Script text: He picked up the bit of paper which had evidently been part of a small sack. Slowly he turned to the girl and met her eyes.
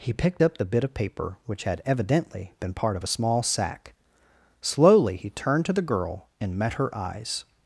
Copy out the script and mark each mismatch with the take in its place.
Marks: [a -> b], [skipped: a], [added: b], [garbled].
He picked up the bit of paper which had evidently been part of a small sack. Slowly he turned to the girl and met her eyes.